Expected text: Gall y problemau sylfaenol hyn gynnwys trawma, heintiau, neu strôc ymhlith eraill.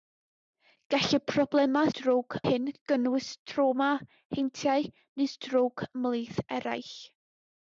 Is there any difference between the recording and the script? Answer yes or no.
yes